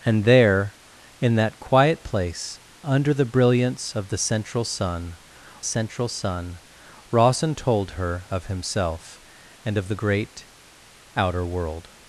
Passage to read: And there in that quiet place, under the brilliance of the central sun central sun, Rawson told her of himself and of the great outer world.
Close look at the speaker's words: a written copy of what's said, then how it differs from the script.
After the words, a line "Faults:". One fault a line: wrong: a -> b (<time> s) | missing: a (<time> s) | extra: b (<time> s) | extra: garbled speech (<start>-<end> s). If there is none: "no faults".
And there in that quiet place, under the brilliance of the central sun central sun, Rawson told her of himself and of the great outer world.
Faults:
no faults